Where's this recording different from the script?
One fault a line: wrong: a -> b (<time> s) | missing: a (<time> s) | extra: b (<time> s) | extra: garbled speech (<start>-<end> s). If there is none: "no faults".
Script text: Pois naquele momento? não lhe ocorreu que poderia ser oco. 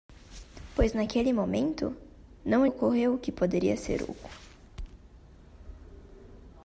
missing: lhe (2.6 s)